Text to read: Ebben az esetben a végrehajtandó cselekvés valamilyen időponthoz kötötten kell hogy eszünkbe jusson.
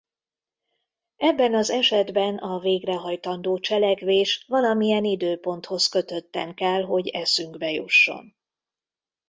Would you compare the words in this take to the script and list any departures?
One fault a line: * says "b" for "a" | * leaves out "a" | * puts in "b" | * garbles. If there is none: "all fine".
all fine